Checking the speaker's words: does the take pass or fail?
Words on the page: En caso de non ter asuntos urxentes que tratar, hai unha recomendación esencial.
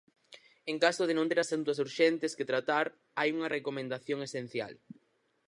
pass